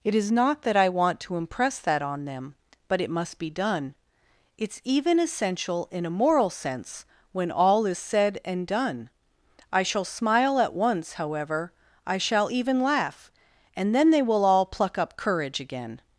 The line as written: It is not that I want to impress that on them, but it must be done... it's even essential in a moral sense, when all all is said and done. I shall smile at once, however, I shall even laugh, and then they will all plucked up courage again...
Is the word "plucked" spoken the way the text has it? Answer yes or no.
no